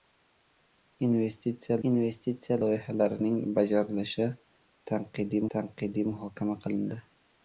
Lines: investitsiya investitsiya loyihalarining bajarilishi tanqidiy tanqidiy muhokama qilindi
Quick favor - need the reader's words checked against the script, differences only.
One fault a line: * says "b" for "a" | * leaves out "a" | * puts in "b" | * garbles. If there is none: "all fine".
all fine